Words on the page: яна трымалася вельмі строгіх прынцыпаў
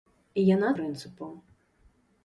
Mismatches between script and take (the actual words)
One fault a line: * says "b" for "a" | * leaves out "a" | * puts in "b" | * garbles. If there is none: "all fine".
* leaves out "трымалася вельмі строгіх"